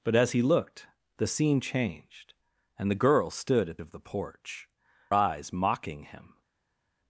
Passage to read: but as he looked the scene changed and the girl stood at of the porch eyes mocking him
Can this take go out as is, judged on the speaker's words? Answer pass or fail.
pass